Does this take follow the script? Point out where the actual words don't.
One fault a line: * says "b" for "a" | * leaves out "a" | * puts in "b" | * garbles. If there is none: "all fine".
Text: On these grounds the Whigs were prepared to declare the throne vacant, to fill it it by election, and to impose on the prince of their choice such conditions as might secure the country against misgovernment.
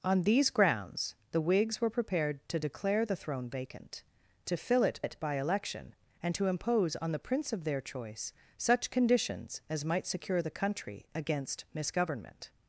all fine